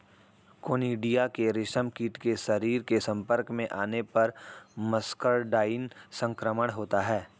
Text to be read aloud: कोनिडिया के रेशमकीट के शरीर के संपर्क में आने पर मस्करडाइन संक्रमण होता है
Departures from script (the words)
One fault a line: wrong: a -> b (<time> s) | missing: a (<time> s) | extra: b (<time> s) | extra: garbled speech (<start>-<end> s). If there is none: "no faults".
no faults